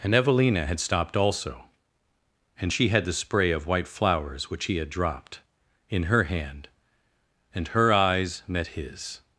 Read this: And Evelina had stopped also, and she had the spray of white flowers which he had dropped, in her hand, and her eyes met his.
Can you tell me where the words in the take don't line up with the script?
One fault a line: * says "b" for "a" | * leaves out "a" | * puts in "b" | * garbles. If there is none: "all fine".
all fine